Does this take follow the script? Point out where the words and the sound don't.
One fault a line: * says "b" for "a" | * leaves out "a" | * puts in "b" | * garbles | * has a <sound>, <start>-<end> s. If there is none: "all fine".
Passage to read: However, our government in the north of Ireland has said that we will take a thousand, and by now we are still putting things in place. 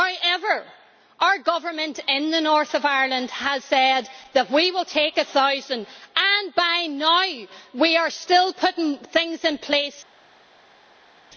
all fine